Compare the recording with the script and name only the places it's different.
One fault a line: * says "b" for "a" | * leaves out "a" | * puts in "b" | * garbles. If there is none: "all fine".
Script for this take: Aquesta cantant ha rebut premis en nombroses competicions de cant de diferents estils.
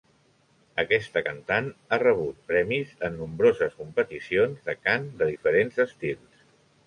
all fine